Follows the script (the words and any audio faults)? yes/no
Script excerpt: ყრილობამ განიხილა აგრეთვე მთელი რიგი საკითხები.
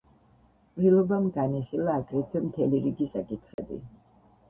no